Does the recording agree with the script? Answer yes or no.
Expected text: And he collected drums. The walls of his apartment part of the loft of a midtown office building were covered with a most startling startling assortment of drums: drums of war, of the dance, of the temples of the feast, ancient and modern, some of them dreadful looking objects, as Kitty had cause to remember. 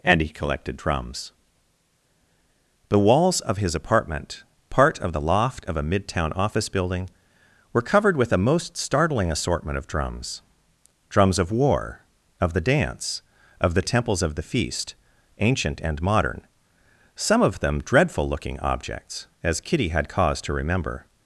no